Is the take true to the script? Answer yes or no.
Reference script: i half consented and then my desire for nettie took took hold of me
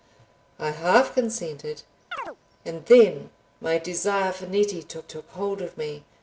yes